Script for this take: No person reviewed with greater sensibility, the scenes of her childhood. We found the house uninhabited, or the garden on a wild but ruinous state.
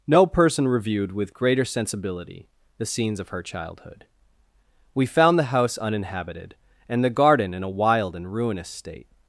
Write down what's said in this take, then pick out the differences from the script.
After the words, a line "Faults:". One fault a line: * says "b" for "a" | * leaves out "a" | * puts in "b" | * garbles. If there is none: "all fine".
No person reviewed with greater sensibility, the scenes of her childhood. We found the house uninhabited, and the garden in a wild and ruinous state.
Faults:
* says "and" for "or"
* says "in" for "on"
* says "and" for "but"